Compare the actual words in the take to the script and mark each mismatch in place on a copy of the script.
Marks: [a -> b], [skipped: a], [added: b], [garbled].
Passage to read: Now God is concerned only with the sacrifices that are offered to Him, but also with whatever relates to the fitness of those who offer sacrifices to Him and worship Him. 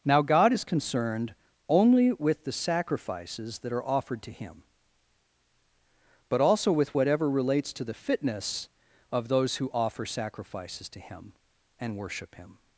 Now God is concerned only with the sacrifices that are offered to Him, but also with whatever relates to the fitness of those who offer sacrifices to Him and worship Him.